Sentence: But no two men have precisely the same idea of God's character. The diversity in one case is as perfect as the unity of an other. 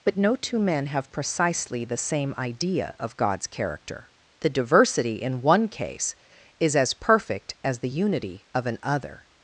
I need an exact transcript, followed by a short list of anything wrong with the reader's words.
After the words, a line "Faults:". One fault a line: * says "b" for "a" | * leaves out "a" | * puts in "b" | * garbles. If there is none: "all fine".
But no two men have precisely the same idea of God's character. The diversity in one case is as perfect as the unity of an other.
Faults:
all fine